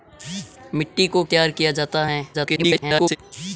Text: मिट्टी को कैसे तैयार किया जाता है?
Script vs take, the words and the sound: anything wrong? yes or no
yes